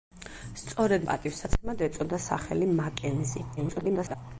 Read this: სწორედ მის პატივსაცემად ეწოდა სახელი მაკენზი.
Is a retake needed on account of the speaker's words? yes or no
yes